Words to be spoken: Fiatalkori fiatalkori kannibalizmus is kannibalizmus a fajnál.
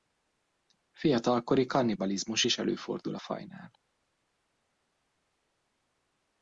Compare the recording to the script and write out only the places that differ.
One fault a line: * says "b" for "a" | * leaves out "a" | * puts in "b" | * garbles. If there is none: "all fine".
* leaves out "fiatalkori"
* says "előfordul" for "kannibalizmus"